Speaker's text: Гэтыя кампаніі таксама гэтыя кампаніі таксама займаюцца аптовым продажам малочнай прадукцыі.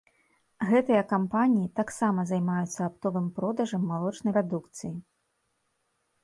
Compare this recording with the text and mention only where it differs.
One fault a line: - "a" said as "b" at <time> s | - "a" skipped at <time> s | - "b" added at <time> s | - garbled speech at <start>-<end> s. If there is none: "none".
- "гэтыя кампаніі таксама" skipped at 2.2 s